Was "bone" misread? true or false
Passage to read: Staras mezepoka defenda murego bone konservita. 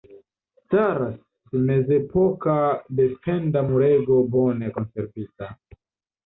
false